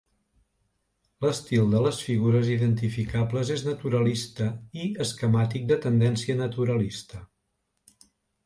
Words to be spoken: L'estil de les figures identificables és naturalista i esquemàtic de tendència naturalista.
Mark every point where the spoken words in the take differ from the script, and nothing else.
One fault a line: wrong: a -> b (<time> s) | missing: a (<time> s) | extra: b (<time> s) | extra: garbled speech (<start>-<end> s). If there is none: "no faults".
no faults